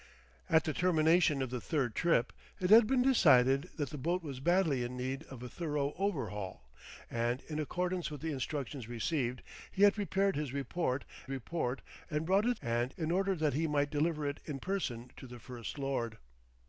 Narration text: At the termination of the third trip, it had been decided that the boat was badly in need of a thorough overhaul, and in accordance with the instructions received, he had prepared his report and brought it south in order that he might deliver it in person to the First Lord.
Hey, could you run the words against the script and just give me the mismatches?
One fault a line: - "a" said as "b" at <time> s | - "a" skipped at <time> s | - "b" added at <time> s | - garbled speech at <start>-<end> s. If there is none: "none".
- "report" added at 11.3 s
- "south" said as "and" at 12.6 s